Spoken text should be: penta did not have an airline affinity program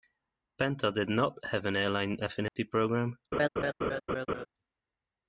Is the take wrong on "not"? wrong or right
right